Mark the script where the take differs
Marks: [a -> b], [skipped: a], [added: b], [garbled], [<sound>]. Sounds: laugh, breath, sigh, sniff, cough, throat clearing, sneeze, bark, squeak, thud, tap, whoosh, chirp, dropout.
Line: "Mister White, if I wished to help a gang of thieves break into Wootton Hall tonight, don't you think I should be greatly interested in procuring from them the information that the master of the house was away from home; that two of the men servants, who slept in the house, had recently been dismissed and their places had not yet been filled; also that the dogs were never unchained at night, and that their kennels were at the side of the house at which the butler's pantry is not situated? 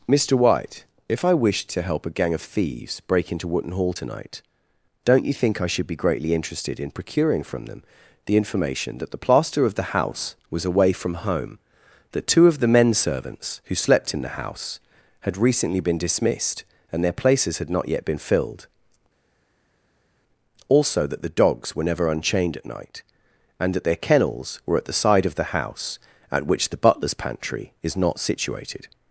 "Mister White, if I wished to help a gang of thieves break into Wootton Hall tonight, don't you think I should be greatly interested in procuring from them the information that the [master -> plaster] of the house was away from home; that two of the men servants, who slept in the house, had recently been dismissed and their places had not yet been filled; also that the dogs were never unchained at night, and that their kennels were at the side of the house at which the butler's pantry is not situated?